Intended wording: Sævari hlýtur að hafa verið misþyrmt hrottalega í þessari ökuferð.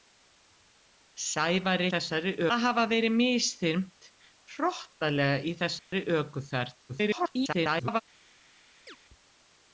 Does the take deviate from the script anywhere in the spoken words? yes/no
yes